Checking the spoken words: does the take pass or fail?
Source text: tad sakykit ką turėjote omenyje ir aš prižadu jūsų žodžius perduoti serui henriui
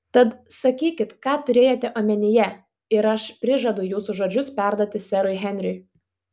pass